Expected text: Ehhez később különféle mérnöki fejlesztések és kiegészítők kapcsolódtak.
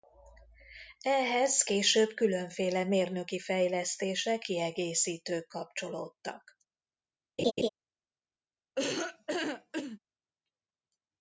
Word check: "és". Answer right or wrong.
wrong